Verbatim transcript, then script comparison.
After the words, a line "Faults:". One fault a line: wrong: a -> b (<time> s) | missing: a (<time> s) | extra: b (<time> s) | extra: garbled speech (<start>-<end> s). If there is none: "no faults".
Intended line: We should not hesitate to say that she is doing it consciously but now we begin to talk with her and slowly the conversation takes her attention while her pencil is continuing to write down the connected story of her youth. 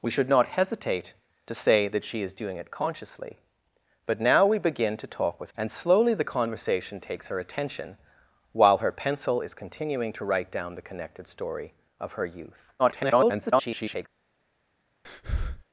We should not hesitate to say that she is doing it consciously but now we begin to talk with and slowly the conversation takes her attention while her pencil is continuing to write down the connected story of her youth. [garbled]
Faults:
missing: her (5.5 s)
extra: garbled speech (12.8-14.1 s)